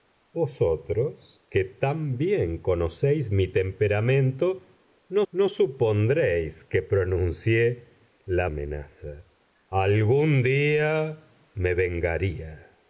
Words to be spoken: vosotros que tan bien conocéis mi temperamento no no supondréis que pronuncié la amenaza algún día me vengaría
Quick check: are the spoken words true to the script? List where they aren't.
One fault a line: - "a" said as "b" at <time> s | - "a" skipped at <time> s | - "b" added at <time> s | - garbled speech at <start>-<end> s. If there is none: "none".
none